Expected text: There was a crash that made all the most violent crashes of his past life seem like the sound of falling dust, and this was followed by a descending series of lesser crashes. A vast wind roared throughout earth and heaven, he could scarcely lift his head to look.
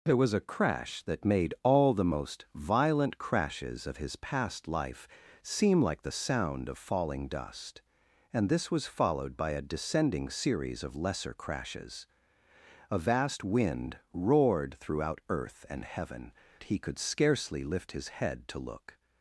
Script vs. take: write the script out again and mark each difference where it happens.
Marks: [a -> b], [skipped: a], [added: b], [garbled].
There was a crash that made all the most violent crashes of his past life seem like the sound of falling dust, and this was followed by a descending series of lesser crashes. A vast wind roared throughout earth and heaven, he could scarcely lift his head to look.